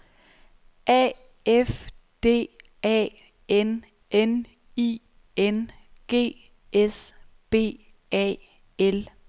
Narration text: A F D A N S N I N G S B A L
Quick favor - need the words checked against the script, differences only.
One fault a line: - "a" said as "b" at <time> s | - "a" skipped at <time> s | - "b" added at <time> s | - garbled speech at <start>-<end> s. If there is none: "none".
- "S" skipped at 3.9 s